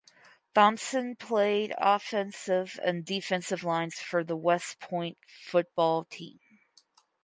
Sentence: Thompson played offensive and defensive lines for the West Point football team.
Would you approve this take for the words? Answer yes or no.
yes